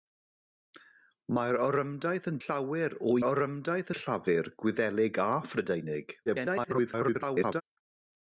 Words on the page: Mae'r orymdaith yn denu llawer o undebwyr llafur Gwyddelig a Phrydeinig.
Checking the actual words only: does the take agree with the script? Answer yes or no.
no